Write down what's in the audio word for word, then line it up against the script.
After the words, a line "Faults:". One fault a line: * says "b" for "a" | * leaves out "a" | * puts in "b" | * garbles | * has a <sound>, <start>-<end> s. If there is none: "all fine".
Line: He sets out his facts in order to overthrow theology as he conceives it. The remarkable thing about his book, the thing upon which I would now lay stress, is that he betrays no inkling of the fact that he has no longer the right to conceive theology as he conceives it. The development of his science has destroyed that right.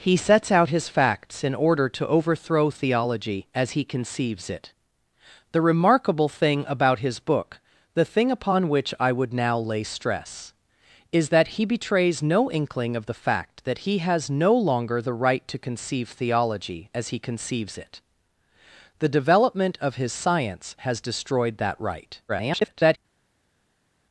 He sets out his facts in order to overthrow theology as he conceives it. The remarkable thing about his book, the thing upon which I would now lay stress, is that he betrays no inkling of the fact that he has no longer the right to conceive theology as he conceives it. The development of his science has destroyed that right. [garbled]
Faults:
* garbles